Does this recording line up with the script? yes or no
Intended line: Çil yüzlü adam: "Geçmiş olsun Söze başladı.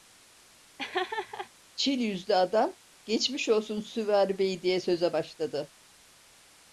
no